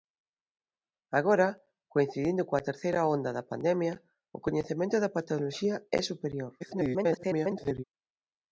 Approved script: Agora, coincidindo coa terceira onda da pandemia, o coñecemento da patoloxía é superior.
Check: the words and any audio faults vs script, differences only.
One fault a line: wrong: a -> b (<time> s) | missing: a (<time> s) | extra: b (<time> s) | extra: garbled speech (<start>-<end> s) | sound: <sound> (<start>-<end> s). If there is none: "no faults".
extra: garbled speech (6.6-7.8 s)